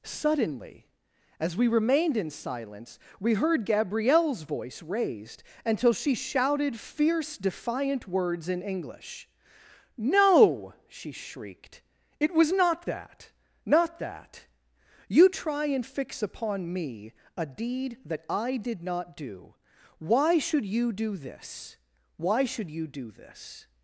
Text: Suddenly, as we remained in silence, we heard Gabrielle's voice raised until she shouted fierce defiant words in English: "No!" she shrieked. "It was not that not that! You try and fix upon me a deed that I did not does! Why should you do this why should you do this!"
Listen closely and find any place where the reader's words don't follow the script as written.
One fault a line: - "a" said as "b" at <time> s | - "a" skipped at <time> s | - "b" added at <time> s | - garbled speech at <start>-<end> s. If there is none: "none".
- "does" said as "do" at 19.2 s